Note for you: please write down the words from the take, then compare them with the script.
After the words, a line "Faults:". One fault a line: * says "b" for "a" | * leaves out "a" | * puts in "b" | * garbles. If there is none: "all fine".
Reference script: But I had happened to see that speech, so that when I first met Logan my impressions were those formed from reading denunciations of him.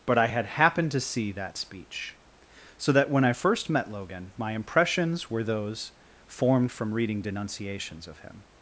But I had happened to see that speech, so that when I first met Logan my impressions were those formed from reading denunciations of him.
Faults:
all fine